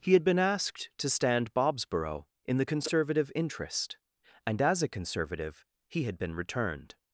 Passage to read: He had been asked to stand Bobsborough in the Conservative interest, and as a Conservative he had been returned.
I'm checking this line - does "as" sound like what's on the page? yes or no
yes